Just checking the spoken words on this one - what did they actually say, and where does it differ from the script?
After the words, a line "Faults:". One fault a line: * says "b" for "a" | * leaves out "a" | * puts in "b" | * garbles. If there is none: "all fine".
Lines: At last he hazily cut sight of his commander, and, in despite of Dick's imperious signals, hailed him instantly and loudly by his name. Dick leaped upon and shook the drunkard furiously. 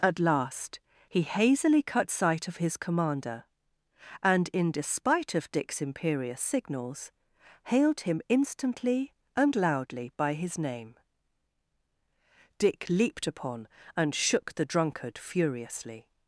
At last he hazily cut sight of his commander, and, in despite of Dick's imperious signals, hailed him instantly and loudly by his name. Dick leaped upon and shook the drunkard furiously.
Faults:
all fine